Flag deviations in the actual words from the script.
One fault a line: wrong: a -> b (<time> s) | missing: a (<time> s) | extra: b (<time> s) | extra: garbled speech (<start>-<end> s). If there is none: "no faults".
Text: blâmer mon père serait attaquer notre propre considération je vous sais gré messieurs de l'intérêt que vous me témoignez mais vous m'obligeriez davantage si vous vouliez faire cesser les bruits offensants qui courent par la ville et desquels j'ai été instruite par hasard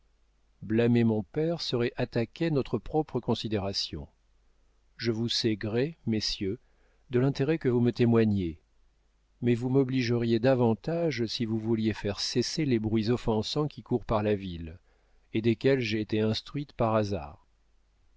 no faults